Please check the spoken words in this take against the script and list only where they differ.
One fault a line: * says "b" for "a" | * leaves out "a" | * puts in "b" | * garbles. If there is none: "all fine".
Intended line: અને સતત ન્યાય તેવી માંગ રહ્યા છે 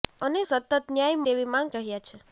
all fine